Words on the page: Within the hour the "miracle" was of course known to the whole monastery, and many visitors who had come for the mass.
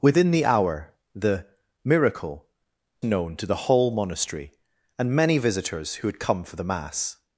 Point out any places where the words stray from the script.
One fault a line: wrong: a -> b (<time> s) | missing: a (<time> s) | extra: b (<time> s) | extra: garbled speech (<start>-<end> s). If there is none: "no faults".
missing: was of course (2.5 s)